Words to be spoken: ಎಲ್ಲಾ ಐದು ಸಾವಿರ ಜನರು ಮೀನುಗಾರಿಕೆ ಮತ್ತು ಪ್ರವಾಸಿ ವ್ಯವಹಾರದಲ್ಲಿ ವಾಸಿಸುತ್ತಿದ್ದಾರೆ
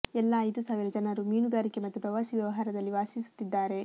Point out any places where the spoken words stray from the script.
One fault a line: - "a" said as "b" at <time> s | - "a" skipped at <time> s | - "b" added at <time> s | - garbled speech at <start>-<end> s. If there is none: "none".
none